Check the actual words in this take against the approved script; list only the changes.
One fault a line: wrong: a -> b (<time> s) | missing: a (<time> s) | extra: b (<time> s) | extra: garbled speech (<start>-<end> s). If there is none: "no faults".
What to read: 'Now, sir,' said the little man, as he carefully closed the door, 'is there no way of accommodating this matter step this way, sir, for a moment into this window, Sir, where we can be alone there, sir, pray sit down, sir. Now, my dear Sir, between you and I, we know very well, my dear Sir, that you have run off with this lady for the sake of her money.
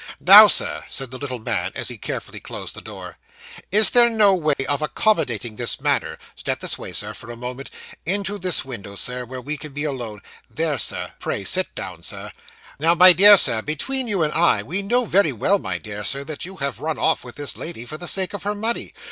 no faults